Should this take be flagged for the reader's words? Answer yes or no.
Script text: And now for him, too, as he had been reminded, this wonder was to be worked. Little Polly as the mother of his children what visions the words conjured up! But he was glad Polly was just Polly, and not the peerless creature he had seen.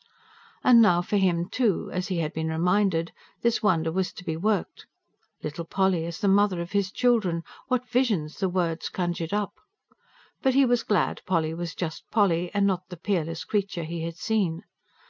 no